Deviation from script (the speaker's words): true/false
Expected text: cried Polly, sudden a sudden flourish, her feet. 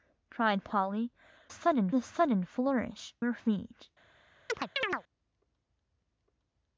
false